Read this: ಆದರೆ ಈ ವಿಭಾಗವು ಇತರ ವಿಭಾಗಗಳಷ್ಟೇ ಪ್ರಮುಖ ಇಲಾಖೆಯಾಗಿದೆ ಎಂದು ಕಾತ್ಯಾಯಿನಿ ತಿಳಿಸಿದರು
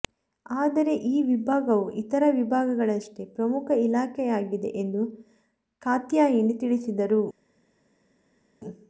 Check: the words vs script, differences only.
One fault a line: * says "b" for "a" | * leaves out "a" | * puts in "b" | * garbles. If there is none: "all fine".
all fine